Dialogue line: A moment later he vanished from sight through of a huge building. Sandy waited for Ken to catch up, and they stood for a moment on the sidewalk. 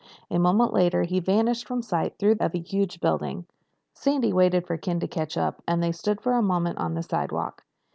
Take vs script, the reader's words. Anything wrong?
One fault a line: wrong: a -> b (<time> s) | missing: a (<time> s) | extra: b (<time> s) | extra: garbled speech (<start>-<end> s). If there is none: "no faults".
no faults